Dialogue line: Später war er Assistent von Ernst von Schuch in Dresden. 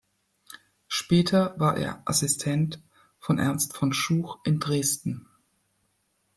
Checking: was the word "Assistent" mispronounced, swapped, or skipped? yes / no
no